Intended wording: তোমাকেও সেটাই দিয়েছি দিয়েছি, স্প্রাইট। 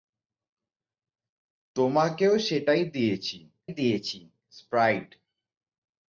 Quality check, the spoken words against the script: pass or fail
pass